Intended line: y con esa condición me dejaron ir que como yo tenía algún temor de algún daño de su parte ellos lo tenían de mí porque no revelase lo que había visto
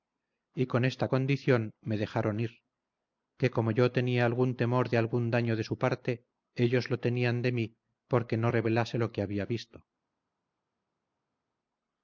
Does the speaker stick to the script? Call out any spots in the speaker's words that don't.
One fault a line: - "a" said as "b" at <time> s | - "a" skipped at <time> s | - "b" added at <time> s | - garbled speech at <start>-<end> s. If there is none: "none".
- "esa" said as "esta" at 0.8 s